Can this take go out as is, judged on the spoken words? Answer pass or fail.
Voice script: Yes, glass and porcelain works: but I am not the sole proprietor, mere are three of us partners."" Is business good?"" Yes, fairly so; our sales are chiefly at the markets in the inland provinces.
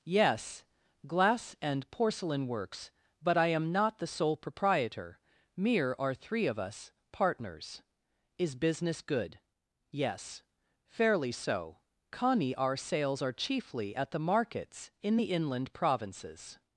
fail